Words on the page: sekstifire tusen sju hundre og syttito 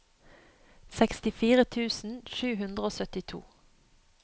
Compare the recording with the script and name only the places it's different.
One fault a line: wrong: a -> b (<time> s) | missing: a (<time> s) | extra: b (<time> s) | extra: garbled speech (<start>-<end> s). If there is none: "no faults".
no faults